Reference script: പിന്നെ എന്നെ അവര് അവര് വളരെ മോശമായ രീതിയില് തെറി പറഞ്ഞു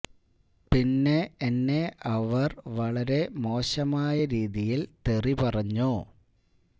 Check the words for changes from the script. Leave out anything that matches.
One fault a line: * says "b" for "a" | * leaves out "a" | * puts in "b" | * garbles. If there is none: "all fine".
* leaves out "അവര്"